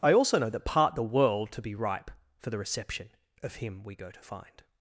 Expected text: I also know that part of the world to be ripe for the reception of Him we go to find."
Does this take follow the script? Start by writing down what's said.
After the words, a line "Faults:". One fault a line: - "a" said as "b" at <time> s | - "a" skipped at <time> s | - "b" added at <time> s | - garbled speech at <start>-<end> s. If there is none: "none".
I also know that part the world to be ripe for the reception of Him we go to find."
Faults:
- "of" skipped at 0.9 s